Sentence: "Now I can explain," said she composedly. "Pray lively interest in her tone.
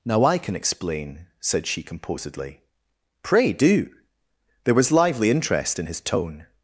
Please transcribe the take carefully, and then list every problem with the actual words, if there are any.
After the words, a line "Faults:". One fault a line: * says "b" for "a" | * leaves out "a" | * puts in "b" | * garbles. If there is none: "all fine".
"Now I can explain," said she composedly. "Pray do." There was lively interest in his tone.
Faults:
* puts in "do There was"
* says "his" for "her"